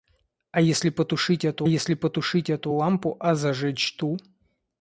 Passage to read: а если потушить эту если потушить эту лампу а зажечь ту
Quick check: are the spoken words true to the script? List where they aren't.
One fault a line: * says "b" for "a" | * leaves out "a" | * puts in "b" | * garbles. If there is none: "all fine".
all fine